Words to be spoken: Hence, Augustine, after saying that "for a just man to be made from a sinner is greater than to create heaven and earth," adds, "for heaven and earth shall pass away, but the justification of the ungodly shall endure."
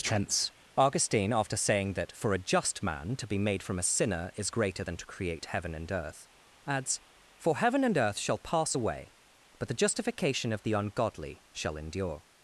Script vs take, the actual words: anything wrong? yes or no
no